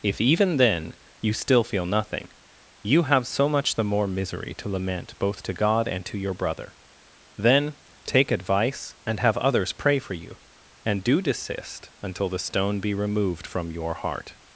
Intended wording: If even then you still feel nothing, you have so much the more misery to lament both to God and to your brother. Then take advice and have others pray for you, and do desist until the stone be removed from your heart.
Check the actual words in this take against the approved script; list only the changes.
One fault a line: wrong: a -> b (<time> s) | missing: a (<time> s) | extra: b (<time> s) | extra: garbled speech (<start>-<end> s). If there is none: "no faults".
no faults